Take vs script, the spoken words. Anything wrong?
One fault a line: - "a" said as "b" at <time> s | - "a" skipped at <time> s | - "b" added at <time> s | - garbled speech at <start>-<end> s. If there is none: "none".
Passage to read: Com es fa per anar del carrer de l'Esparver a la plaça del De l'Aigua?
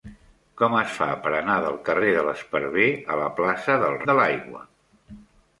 none